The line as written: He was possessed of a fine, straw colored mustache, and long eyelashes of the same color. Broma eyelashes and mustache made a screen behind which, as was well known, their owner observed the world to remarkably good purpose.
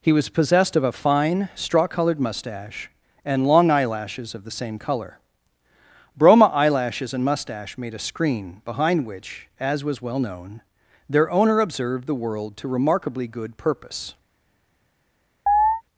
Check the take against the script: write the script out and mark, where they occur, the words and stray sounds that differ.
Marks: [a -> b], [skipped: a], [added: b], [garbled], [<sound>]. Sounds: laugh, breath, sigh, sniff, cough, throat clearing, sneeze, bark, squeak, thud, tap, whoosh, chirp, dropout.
He was possessed of a fine, straw colored mustache, and long eyelashes of the same color. Broma eyelashes and mustache made a screen behind which, as was well known, their owner observed the world to remarkably good purpose. [chirp]